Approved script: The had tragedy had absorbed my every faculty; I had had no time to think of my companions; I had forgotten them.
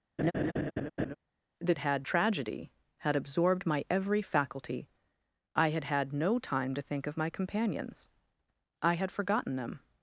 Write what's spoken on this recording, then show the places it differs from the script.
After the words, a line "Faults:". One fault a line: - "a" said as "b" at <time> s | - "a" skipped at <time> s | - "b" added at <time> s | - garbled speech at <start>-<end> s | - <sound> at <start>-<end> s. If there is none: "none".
The had tragedy had absorbed my every faculty; I had had no time to think of my companions; I had forgotten them.
Faults:
- laugh at 0.2-1.2 s